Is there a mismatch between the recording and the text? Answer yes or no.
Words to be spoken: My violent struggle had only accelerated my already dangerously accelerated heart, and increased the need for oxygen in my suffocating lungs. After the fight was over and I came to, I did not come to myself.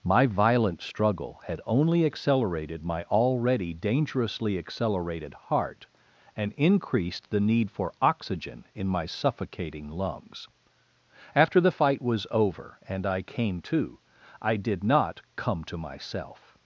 no